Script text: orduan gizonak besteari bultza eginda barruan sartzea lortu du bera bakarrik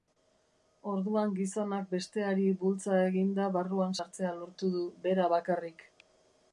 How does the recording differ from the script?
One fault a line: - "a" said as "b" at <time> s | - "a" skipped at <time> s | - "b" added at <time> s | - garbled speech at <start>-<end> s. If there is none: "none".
none